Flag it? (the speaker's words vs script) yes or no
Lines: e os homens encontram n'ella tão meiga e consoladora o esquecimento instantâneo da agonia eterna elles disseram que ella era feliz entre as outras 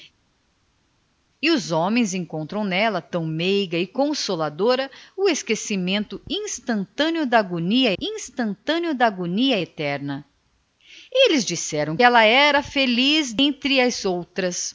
yes